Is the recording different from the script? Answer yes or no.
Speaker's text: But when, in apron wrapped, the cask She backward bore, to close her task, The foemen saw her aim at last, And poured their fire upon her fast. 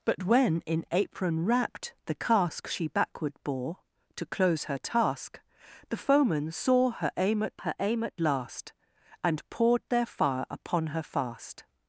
yes